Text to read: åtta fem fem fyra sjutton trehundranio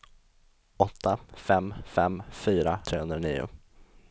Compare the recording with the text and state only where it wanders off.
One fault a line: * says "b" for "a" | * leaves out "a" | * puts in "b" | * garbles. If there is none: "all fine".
* leaves out "sjutton"